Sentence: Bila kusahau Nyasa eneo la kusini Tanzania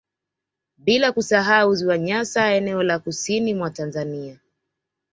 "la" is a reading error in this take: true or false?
false